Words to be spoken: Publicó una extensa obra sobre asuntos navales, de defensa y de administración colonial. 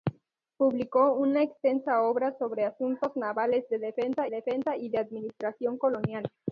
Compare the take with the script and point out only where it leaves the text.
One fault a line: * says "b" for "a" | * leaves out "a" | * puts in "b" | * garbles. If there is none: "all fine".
* puts in "defensa"